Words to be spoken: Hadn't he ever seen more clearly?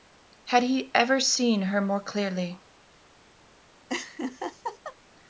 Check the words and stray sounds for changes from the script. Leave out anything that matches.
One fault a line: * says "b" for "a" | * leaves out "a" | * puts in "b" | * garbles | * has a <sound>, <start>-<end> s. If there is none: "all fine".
* says "Had" for "Hadn't"
* puts in "her"
* has a laugh, 3.9-5.0 s